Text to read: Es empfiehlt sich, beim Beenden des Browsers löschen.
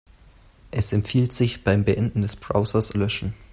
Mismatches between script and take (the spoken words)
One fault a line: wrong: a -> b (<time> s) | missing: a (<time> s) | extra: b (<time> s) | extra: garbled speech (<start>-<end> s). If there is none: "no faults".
no faults